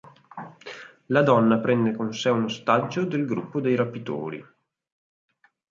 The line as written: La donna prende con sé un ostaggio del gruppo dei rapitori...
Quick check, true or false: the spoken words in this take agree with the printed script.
true